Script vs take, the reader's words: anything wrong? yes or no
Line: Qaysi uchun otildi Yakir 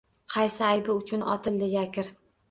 yes